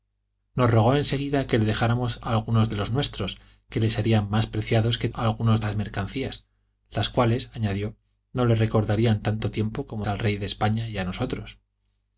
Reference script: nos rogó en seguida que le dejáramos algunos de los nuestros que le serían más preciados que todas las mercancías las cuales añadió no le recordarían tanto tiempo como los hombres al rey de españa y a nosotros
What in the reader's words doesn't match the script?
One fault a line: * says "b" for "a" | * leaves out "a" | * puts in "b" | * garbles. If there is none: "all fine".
* says "algunos" for "todas"
* leaves out "los hombres"